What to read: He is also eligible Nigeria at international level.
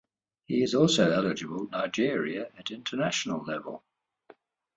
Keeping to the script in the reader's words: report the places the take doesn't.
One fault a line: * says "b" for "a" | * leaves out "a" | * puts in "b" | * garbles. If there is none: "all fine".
all fine